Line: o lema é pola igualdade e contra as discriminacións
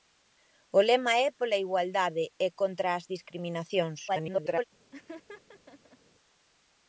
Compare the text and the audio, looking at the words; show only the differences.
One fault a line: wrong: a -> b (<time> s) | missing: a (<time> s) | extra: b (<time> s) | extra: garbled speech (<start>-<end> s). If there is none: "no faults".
extra: garbled speech (4.1-4.6 s)